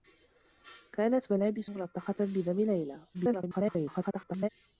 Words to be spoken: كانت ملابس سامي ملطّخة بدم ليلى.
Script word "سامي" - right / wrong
wrong